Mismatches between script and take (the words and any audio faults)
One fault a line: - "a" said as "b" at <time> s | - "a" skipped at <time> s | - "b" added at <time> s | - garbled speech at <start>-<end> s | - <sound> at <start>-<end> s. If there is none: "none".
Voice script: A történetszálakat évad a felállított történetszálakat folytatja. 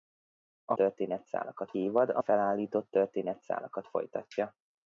none